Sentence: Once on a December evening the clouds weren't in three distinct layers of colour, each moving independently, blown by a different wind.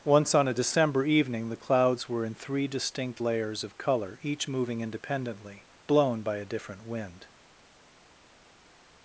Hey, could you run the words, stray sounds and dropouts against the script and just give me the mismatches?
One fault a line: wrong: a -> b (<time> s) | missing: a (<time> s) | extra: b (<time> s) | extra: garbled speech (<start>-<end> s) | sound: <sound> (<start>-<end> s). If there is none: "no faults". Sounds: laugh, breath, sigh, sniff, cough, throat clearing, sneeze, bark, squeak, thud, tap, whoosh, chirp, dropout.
wrong: weren't -> were (2.1 s)